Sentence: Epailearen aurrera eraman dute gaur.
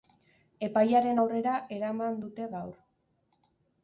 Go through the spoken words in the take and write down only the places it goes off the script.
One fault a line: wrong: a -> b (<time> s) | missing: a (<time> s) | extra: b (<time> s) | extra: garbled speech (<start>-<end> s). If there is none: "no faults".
no faults